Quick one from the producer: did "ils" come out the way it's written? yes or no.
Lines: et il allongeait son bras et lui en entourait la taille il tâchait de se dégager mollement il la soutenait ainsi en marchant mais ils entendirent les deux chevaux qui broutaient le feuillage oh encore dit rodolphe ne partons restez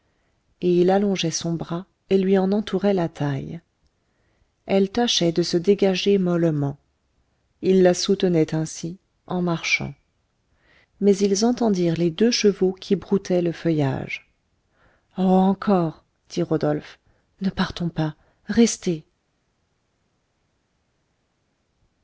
yes